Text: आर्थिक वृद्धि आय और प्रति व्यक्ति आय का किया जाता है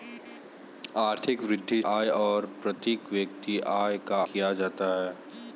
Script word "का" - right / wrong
right